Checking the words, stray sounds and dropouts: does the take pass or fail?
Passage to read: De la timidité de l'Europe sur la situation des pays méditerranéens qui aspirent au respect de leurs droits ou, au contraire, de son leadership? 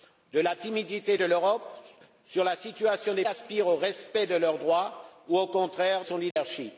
fail